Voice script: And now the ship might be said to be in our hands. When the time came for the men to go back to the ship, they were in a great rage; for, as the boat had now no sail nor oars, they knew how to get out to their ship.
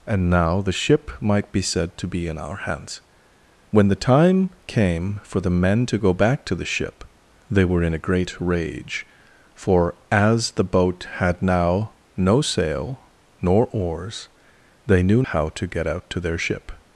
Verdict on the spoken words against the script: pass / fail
pass